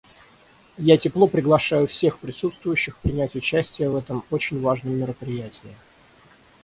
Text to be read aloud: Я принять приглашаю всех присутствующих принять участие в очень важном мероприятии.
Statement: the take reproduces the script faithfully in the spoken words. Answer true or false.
false